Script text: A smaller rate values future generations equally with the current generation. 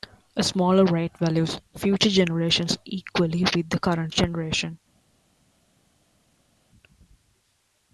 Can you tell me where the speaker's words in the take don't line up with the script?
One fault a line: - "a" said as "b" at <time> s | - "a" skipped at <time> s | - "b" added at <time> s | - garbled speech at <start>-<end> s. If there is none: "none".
none